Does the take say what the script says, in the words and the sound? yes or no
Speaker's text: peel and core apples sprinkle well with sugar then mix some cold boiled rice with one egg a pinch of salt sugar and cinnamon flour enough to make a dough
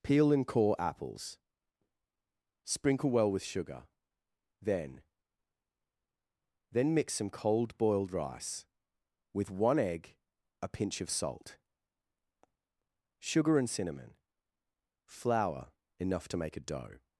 no